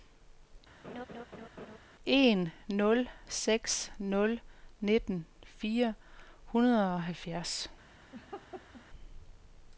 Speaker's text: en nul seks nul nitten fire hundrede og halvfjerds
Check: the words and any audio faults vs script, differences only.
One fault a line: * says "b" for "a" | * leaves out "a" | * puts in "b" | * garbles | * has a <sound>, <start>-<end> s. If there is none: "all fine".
* has a laugh, 0.8-1.8 s
* has a laugh, 8.1-8.8 s